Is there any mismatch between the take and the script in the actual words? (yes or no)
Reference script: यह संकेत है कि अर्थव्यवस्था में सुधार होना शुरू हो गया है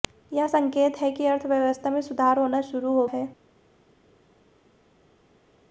yes